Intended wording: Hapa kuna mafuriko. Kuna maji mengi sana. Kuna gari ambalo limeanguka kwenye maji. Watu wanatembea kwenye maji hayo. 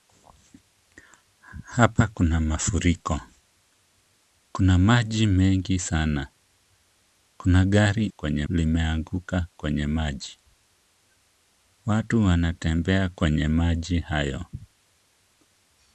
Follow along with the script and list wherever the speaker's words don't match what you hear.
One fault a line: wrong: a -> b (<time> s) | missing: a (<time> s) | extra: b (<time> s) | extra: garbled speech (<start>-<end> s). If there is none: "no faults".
wrong: ambalo -> kwenye (8.1 s)